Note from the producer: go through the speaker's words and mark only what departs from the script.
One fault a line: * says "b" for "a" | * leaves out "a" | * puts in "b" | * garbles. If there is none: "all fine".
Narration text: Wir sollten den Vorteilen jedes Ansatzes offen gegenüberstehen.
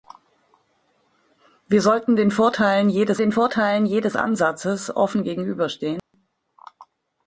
* puts in "den Vorteilen jedes"